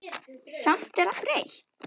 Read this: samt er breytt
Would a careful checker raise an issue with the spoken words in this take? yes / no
no